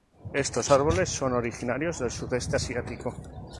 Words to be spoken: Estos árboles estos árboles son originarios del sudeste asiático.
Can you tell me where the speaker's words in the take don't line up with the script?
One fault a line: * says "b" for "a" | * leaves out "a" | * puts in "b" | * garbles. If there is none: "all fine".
* leaves out "estos árboles"